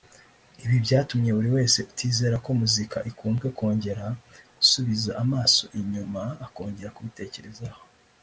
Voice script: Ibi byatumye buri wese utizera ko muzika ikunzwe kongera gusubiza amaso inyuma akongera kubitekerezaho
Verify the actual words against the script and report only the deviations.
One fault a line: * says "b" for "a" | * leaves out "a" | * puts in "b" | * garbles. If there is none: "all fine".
all fine